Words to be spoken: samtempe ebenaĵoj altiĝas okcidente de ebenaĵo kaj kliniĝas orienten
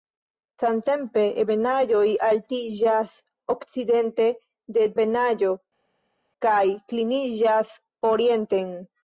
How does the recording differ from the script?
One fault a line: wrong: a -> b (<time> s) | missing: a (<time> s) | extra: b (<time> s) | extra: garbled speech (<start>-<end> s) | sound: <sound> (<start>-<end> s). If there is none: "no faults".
no faults